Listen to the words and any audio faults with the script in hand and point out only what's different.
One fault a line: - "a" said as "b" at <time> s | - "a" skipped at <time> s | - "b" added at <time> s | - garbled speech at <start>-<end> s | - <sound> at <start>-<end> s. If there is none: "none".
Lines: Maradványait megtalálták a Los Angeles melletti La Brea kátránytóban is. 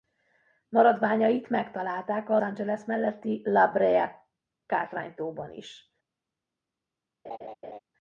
- "Los" skipped at 2.4 s
- laugh at 7.2-7.8 s